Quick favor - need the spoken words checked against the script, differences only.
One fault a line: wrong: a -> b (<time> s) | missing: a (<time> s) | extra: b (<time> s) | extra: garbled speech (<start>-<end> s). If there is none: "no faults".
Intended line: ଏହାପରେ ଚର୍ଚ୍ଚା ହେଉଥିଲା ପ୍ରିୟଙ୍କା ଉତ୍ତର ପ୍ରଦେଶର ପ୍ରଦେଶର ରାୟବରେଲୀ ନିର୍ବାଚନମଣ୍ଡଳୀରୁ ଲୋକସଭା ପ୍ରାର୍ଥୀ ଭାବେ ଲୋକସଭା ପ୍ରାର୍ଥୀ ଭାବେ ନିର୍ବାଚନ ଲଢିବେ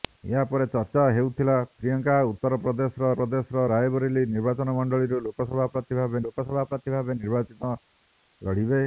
no faults